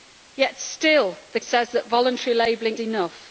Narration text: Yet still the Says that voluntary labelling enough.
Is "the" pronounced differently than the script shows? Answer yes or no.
no